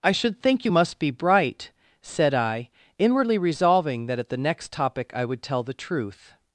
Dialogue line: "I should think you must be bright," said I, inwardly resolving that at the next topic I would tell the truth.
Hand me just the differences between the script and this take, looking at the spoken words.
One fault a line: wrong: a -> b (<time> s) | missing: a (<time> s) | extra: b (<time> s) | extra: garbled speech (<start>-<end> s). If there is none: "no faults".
no faults